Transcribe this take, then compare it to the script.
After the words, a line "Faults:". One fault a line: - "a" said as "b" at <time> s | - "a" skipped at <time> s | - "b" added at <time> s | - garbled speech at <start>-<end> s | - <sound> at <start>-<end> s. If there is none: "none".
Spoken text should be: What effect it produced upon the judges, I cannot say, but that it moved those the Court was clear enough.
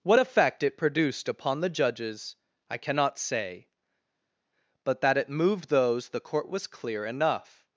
What effect it produced upon the judges, I cannot say, but that it moved those the Court was clear enough.
Faults:
none